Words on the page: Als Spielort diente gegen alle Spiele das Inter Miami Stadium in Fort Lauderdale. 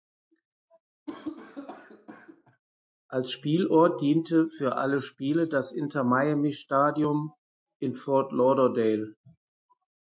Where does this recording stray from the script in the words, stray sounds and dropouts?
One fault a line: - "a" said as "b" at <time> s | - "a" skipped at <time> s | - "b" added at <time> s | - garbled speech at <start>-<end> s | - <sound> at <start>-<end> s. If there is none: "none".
- cough at 1.1-2.6 s
- "gegen" said as "für" at 4.5 s